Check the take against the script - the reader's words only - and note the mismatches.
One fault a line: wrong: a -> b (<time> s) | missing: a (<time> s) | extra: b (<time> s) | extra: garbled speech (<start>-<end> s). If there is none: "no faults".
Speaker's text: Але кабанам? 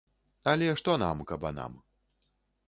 extra: што нам (0.8 s)